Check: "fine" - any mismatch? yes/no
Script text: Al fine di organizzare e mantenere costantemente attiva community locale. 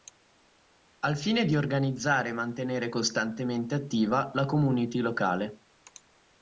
no